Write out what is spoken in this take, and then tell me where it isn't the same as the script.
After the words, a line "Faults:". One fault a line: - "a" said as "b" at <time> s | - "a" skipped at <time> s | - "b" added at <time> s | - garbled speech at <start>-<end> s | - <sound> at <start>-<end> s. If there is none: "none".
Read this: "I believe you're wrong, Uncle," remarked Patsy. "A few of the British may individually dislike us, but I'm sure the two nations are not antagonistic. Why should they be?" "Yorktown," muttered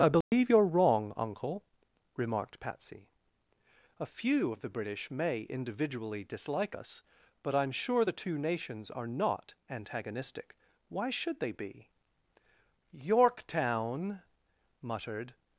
"I believe you're wrong, Uncle," remarked Patsy. "A few of the British may individually dislike us, but I'm sure the two nations are not antagonistic. Why should they be?" "Yorktown," muttered
Faults:
- dropout at 0.2-0.3 s